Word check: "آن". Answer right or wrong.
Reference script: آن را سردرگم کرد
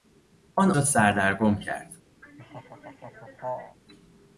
right